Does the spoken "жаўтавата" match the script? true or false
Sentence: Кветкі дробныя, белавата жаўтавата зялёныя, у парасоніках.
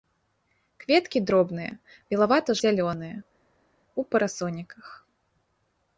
false